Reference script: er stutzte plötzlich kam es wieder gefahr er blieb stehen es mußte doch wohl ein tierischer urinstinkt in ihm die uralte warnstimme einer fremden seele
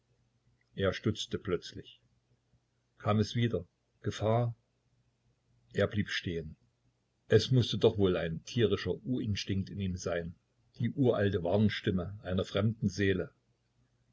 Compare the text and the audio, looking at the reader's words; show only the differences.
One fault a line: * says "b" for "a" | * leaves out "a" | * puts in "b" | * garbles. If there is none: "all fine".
* puts in "sein"